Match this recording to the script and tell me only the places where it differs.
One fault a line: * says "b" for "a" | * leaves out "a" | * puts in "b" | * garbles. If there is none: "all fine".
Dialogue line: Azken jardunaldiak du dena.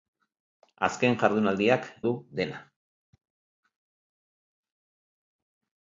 all fine